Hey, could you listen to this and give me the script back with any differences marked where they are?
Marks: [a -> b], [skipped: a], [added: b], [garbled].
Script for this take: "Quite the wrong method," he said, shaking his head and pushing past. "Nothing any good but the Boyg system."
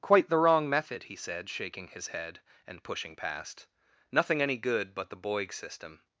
"Quite the wrong method," he said, shaking his head and pushing past. "Nothing any good but the Boyg system."